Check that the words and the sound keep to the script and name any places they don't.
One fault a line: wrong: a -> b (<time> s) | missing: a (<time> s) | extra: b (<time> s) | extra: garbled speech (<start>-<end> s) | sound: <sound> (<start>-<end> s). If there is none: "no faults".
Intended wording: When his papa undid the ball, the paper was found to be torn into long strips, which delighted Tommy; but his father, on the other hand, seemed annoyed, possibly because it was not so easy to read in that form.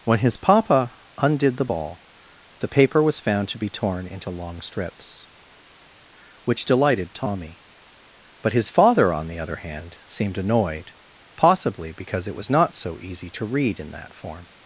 no faults